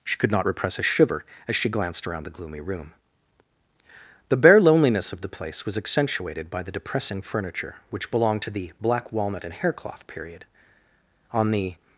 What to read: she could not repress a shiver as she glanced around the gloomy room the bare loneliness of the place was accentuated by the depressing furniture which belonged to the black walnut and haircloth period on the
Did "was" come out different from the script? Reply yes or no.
no